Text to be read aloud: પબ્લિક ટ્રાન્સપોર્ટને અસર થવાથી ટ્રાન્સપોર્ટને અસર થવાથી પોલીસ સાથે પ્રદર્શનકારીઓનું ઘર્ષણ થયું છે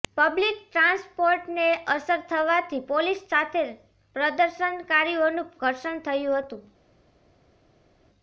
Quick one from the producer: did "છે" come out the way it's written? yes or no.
no